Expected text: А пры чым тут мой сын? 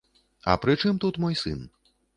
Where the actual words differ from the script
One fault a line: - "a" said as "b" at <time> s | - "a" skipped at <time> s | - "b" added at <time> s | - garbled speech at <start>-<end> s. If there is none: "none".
none